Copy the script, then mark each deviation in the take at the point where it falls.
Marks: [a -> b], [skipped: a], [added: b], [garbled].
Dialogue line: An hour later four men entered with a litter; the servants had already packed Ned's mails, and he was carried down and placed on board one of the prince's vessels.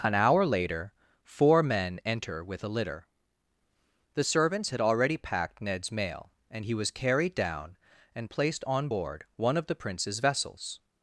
An hour later four men [entered -> enter] with a litter; the servants had already packed Ned's [mails, -> mail] and he was carried down and placed on board one of the prince's vessels.